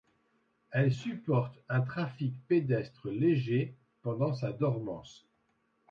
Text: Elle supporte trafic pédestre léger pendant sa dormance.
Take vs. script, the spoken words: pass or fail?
fail